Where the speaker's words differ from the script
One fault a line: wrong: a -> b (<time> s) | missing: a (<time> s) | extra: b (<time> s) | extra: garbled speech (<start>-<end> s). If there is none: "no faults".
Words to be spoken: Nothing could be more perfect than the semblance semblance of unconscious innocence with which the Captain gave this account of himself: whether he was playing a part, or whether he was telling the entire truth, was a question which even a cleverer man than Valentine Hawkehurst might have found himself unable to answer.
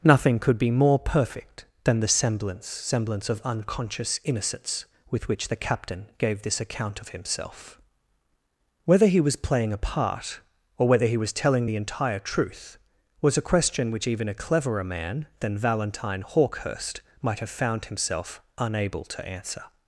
no faults